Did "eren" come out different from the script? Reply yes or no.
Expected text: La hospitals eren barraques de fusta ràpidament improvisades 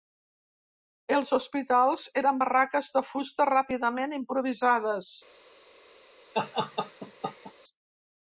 no